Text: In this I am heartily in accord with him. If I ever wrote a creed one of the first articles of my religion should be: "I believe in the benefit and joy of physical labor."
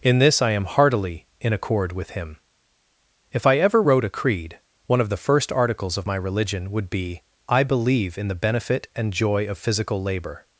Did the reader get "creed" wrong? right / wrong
right